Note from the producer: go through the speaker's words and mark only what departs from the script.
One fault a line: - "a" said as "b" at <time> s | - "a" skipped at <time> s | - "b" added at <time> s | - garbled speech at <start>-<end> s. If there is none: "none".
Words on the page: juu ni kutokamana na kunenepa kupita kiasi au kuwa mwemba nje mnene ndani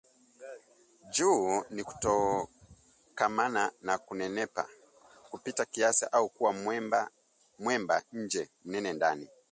none